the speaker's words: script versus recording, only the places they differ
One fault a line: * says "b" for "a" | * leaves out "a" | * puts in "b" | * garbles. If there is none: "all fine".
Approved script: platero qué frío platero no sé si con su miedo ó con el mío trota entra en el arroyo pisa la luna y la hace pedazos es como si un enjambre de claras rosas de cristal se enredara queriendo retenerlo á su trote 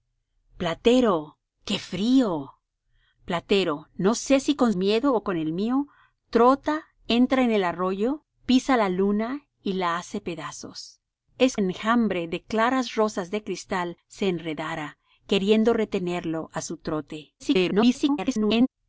* leaves out "su"
* leaves out "como si un"
* garbles